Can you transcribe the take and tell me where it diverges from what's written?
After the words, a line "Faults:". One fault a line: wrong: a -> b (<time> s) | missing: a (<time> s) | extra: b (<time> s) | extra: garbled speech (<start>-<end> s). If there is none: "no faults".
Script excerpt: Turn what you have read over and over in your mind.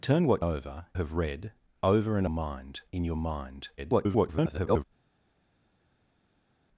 Turn what over have read over and mind in your mind. [garbled]
Faults:
wrong: you -> over (0.4 s)
wrong: over -> mind (2.3 s)
extra: garbled speech (3.8-4.8 s)